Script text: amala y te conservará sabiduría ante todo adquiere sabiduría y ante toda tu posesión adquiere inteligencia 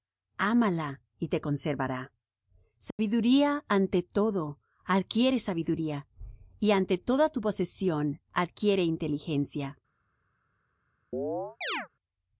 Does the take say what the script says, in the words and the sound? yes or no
no